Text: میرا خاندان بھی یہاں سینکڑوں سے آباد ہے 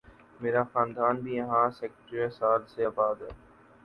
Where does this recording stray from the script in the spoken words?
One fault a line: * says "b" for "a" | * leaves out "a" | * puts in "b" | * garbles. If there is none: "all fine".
* puts in "سال"